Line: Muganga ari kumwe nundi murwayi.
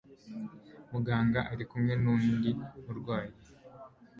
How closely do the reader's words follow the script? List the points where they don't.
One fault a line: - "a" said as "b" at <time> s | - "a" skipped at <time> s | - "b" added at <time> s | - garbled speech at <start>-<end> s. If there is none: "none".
none